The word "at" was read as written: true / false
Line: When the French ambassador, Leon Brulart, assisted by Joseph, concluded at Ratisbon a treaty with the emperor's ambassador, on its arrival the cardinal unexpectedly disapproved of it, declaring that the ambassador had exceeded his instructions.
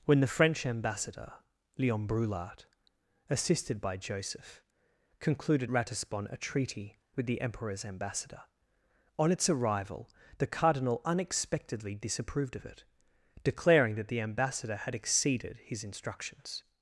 false